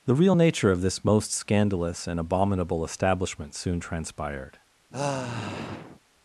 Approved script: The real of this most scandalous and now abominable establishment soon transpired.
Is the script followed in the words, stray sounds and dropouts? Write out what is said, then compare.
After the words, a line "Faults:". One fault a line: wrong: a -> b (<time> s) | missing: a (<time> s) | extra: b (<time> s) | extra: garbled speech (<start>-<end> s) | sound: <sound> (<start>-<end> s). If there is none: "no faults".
The real nature of this most scandalous and abominable establishment soon transpired.
Faults:
extra: nature (0.3 s)
missing: now (2.2 s)
sound: sigh (4.9-6.0 s)